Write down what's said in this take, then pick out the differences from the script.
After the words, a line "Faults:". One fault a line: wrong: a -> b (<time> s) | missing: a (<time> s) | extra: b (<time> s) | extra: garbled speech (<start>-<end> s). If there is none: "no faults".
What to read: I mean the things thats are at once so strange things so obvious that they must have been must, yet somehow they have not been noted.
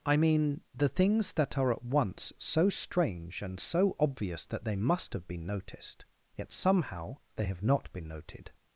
I mean the things that are at once so strange and so obvious that they must have been noticed, yet somehow they have not been noted.
Faults:
wrong: thats -> that (1.3 s)
wrong: things -> and (3.4 s)
wrong: must -> noticed (5.5 s)